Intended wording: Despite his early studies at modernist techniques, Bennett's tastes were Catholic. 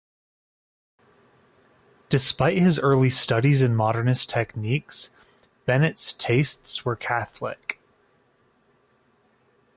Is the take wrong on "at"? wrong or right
wrong